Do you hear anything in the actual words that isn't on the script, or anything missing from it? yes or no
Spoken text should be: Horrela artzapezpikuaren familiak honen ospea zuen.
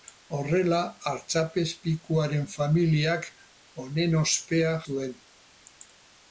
no